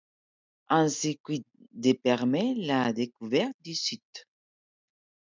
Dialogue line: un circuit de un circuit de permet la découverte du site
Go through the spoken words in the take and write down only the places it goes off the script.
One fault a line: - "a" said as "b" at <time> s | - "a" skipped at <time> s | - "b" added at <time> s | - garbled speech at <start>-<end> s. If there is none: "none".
- "un circuit de" skipped at 1.9 s